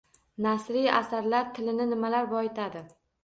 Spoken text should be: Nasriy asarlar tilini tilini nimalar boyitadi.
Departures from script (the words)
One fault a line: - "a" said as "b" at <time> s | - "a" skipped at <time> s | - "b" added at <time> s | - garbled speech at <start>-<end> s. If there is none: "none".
- "tilini" skipped at 1.9 s